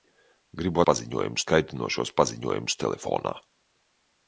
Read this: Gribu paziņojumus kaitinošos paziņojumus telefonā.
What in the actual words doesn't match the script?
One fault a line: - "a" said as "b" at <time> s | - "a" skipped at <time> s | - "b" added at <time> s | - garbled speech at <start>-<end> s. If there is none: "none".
none